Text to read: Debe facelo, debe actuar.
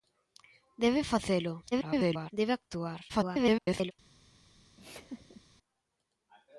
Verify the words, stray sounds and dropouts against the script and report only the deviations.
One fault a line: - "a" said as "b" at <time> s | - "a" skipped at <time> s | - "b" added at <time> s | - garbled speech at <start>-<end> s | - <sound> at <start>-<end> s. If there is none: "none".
- garbled speech at 1.7-2.3 s
- garbled speech at 3.1-3.9 s
- laugh at 4.8-5.4 s